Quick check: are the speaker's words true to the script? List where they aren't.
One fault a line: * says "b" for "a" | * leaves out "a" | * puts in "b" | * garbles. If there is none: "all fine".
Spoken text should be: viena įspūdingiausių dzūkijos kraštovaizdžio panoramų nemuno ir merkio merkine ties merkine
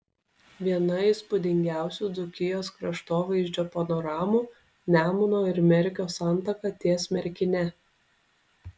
* says "santaka" for "merkine"